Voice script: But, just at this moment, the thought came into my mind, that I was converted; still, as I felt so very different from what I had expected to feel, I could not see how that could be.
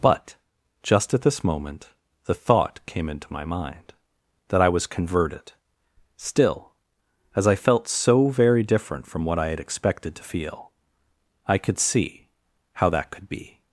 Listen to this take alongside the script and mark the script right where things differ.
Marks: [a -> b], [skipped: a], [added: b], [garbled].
But, just at this moment, the thought came into my mind, that I was converted; still, as I felt so very different from what I had expected to feel, I could [skipped: not] see how that could be.